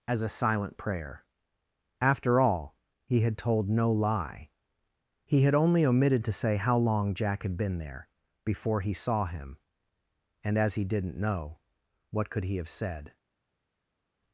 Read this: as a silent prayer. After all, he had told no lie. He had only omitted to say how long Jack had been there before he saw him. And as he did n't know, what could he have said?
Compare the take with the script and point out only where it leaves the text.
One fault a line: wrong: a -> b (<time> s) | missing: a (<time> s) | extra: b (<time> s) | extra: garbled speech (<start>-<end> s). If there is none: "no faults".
no faults